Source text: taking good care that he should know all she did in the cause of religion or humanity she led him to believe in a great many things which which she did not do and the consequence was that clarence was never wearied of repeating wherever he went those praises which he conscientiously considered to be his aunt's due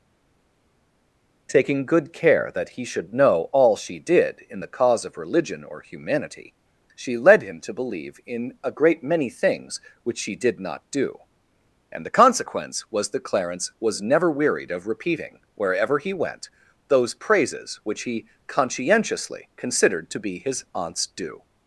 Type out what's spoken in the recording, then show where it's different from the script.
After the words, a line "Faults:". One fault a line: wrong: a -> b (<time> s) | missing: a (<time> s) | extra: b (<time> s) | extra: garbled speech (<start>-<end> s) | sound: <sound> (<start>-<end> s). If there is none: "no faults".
taking good care that he should know all she did in the cause of religion or humanity she led him to believe in a great many things which she did not do and the consequence was that clarence was never wearied of repeating wherever he went those praises which he conscientiously considered to be his aunt's due
Faults:
missing: which (10.2 s)